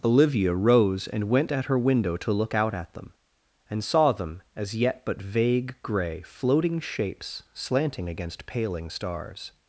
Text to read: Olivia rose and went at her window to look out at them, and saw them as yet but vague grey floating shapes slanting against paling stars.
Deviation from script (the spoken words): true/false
false